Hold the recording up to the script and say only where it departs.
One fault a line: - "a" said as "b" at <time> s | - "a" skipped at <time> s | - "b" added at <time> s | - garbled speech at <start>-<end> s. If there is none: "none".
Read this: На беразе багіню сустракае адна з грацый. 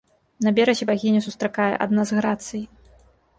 none